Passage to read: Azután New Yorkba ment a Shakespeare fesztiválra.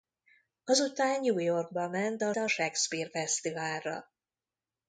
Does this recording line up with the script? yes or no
no